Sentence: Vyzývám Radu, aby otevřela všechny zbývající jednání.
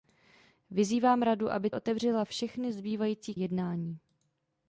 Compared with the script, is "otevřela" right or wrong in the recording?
right